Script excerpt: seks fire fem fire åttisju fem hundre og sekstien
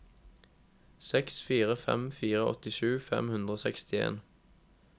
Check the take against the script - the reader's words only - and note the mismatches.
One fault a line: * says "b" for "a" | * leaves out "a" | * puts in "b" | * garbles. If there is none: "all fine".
all fine